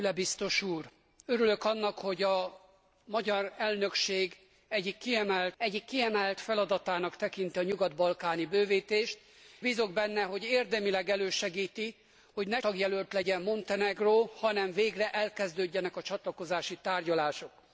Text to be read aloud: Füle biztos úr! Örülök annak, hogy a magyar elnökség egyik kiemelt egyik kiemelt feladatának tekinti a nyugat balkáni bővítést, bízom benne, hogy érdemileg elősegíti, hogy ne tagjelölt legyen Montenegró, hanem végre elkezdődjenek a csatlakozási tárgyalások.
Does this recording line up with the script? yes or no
yes